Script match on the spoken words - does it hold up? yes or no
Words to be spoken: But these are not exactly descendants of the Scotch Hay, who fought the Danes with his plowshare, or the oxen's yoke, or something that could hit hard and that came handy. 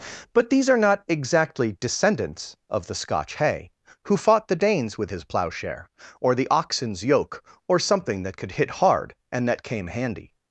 yes